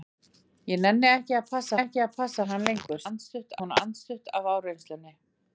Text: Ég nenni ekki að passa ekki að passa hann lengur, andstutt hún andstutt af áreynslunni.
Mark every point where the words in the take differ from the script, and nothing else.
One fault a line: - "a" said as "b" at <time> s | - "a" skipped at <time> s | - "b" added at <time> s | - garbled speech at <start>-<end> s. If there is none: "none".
none